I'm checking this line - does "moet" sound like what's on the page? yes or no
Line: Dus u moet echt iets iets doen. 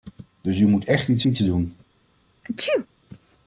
yes